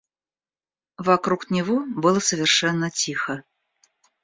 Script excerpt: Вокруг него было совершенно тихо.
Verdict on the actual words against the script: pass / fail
pass